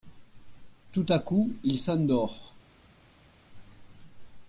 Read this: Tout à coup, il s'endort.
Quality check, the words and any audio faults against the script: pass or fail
pass